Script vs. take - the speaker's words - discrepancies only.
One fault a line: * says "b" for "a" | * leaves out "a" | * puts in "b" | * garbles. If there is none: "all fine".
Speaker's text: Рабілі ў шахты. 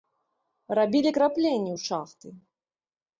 * puts in "крапленні"